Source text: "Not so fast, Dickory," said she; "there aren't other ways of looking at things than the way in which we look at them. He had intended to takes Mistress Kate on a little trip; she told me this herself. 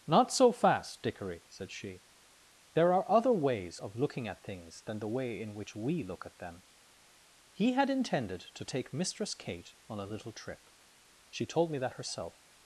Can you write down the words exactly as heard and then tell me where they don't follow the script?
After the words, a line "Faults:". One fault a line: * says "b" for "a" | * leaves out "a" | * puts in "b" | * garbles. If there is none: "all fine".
"Not so fast, Dickory," said she; "there are other ways of looking at things than the way in which we look at them. He had intended to take Mistress Kate on a little trip; she told me that herself.
Faults:
* says "are" for "aren't"
* says "take" for "takes"
* says "that" for "this"